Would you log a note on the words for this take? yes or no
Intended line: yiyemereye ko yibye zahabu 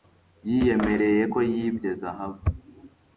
no